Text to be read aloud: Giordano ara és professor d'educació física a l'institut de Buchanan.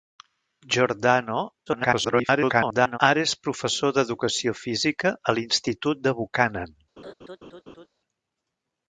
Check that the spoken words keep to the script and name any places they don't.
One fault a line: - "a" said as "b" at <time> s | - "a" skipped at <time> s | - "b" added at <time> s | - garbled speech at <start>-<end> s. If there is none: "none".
- garbled speech at 1.7-3.0 s